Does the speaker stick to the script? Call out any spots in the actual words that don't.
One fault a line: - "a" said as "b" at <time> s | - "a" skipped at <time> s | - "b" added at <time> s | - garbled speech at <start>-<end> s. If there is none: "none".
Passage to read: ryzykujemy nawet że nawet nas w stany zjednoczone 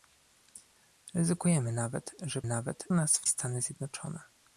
none